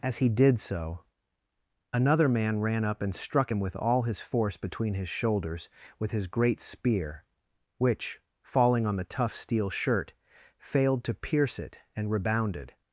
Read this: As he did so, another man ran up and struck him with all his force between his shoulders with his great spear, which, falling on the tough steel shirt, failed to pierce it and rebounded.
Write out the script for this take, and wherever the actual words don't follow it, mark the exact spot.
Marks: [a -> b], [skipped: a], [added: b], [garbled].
As he did so, another man ran up and struck him with all his force between his shoulders with his great spear, which, falling on the tough steel shirt, failed to pierce it and rebounded.